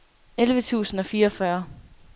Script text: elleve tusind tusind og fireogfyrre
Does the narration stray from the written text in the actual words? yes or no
yes